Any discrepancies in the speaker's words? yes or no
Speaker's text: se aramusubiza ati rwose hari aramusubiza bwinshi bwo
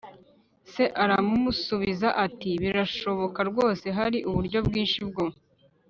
yes